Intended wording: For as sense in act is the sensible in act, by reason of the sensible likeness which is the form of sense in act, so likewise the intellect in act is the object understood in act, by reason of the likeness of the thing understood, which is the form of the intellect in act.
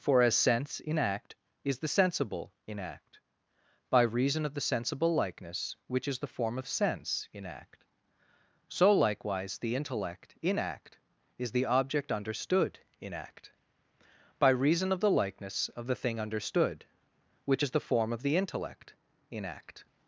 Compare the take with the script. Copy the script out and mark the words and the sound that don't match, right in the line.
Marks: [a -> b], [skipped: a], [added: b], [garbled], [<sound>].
For as sense in act is the sensible in act, by reason of the sensible likeness which is the form of sense in act, so likewise the intellect in act is the object understood in act, by reason of the likeness of the thing understood, which is the form of the intellect in act.